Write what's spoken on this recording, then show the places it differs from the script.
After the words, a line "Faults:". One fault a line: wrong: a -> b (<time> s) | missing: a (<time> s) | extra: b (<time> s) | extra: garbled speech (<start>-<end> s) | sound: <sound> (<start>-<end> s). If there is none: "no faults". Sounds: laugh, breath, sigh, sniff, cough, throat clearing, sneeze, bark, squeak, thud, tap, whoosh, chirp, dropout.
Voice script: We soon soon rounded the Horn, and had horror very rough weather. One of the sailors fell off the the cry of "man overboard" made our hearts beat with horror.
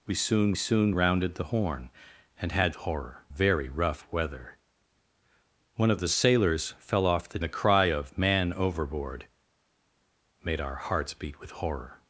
We soon soon rounded the Horn, and had horror very rough weather. One of the sailors fell off the the cry of "man overboard" made our hearts beat with horror.
Faults:
no faults